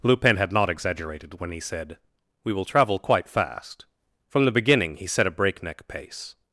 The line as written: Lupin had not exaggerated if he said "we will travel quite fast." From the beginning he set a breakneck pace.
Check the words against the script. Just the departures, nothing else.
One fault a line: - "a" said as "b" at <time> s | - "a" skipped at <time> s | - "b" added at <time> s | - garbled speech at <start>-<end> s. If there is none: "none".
- "if" said as "when" at 1.4 s